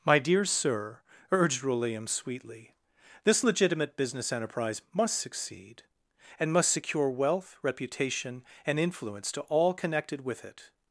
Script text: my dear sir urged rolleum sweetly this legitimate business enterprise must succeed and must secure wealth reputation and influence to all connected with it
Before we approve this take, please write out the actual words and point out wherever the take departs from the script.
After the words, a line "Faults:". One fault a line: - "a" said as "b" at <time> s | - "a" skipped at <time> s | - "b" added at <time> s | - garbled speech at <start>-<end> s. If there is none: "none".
my dear sir urged rolleum sweetly this legitimate business enterprise must succeed and must secure wealth reputation and influence to all connected with it
Faults:
none